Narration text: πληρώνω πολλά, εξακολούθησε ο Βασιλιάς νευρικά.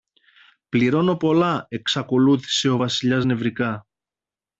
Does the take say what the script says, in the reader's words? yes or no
yes